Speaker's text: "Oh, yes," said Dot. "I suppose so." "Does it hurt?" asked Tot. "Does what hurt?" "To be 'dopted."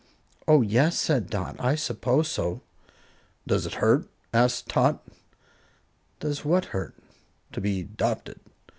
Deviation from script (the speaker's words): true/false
false